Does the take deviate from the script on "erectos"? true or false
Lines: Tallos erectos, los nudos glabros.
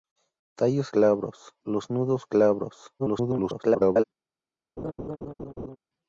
true